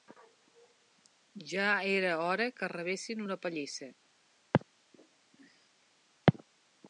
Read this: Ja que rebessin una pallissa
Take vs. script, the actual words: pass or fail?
fail